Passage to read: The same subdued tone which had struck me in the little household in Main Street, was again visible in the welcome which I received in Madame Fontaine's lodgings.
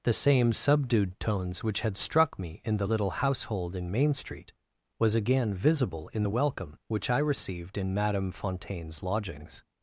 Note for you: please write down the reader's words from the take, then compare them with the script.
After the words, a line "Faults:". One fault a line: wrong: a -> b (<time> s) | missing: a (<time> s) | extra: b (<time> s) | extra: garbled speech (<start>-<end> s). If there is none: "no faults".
The same subdued tones which had struck me in the little household in Main Street, was again visible in the welcome which I received in Madame Fontaine's lodgings.
Faults:
wrong: tone -> tones (1.2 s)